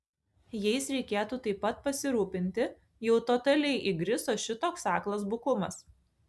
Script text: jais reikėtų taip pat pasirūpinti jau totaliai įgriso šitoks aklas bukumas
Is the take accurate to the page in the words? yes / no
yes